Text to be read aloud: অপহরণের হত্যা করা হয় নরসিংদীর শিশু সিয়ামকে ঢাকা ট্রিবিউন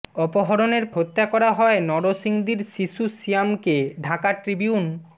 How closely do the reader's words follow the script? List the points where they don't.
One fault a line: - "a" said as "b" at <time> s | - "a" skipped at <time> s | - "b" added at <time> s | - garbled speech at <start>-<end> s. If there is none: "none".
none